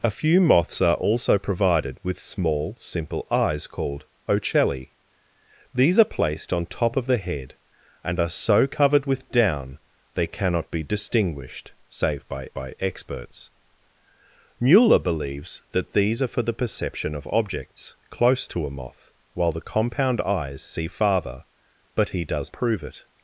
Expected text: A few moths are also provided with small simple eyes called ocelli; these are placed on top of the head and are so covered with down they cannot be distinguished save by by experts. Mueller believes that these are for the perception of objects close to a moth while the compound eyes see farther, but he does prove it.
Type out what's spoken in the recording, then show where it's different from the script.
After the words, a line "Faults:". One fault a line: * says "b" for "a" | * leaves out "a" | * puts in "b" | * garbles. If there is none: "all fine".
A few moths are also provided with small simple eyes called ocelli; these are placed on top of the head and are so covered with down they cannot be distinguished save by by experts. Mueller believes that these are for the perception of objects close to a moth while the compound eyes see farther, but he does prove it.
Faults:
all fine